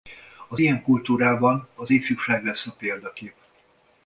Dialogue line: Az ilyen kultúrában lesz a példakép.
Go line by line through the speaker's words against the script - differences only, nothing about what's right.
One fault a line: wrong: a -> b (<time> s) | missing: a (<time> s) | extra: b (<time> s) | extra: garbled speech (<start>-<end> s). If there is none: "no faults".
extra: az ifjúság (1.7 s)